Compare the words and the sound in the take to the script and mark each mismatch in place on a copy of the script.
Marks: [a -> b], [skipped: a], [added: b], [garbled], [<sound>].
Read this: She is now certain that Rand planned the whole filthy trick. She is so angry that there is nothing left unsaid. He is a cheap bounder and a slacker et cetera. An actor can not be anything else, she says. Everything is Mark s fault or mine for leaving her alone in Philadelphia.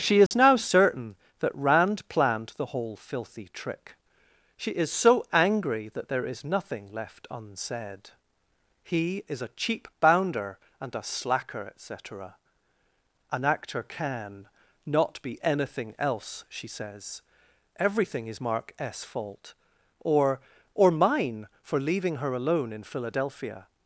She is [dropout] now certain that Rand planned the whole filthy trick. She is so angry that there is nothing left unsaid. He is a cheap bounder and a slacker et cetera. An actor can not be anything else, she says. Everything is Mark s fault or [added: or] mine for leaving her alone in Philadelphia.